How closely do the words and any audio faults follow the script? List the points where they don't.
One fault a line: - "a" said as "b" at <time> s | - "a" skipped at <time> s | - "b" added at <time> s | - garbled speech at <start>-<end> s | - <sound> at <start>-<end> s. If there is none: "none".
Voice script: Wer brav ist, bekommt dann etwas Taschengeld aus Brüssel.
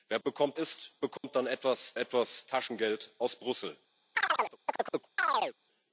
- "brav" said as "bekommt" at 0.2 s
- dropout at 1.2-1.2 s
- "etwas" added at 1.9 s
- chirp at 4.1-5.6 s